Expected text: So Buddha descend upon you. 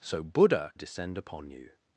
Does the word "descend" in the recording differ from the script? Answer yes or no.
no